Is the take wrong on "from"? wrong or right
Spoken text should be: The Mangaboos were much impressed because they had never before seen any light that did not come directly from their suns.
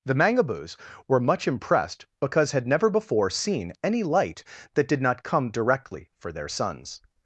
wrong